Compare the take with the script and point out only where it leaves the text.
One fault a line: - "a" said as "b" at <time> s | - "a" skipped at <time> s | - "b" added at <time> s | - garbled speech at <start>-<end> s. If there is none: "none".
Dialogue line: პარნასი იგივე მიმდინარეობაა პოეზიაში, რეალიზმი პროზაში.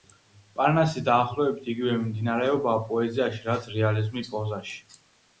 - "დაახლოებით" added at 1.1 s
- "რაც" added at 3.5 s